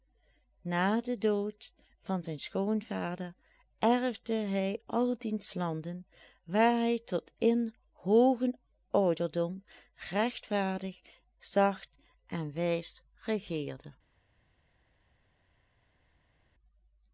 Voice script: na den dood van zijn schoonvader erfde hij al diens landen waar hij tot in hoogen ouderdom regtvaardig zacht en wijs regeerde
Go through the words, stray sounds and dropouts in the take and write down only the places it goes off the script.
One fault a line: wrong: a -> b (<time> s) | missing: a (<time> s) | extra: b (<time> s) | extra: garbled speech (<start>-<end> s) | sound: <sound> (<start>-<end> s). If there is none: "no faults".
no faults